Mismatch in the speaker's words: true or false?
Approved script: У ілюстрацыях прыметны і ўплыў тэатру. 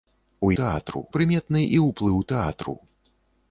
true